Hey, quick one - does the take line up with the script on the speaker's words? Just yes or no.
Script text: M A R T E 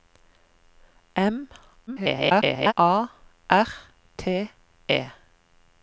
no